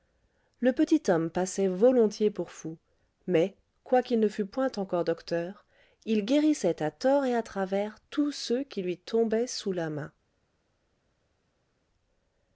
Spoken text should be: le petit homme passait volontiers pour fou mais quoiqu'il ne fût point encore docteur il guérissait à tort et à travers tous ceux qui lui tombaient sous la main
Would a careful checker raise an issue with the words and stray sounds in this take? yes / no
no